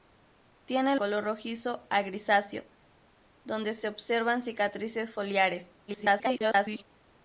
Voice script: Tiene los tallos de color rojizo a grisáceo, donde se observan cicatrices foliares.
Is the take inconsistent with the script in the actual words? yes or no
yes